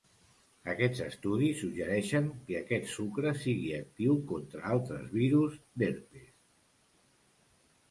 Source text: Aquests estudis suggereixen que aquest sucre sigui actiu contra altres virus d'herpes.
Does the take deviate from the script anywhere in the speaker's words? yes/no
no